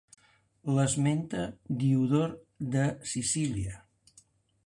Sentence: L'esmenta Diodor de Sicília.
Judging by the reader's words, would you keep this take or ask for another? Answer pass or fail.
pass